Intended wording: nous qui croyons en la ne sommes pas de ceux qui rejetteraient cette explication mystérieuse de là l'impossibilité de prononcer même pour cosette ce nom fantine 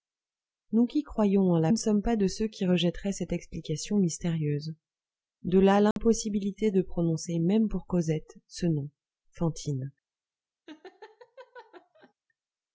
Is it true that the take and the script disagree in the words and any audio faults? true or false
true